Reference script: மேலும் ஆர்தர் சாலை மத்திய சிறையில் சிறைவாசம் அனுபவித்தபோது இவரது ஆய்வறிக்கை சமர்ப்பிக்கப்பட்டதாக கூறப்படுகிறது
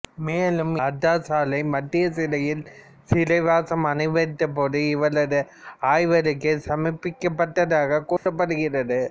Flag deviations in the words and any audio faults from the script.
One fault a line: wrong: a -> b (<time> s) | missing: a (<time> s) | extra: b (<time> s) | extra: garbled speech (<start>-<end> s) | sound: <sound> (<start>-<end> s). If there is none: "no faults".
sound: dropout (8.2-8.3 s)